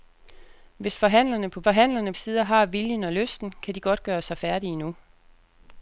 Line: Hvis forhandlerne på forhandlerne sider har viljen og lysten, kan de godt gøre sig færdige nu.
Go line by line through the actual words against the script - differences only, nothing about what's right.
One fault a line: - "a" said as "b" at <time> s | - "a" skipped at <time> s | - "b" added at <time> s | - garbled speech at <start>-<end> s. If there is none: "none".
none